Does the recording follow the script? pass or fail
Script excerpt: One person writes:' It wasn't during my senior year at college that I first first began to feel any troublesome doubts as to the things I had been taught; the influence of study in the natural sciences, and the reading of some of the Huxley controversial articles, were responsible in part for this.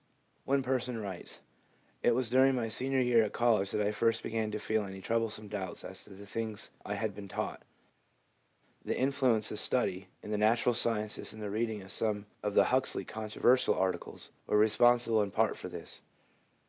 fail